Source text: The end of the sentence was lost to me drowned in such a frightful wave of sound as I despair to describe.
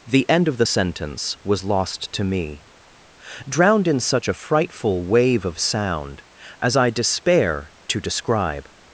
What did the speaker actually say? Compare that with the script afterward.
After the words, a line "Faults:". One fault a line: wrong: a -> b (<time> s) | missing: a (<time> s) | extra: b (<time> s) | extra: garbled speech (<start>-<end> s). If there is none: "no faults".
The end of the sentence was lost to me drowned in such a frightful wave of sound as I despair to describe.
Faults:
no faults